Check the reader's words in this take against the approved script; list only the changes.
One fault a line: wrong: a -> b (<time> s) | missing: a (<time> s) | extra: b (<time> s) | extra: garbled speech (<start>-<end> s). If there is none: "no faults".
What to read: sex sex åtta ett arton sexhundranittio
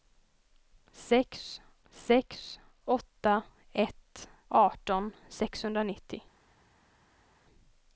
no faults